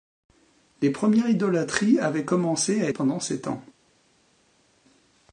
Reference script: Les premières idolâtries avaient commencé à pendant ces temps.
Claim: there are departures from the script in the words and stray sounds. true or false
false